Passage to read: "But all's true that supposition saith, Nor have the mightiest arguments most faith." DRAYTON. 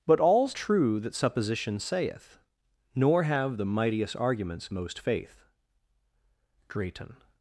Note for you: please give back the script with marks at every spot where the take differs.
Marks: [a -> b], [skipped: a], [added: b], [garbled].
"But all's true that supposition saith, Nor have the mightiest arguments most faith." DRAYTON.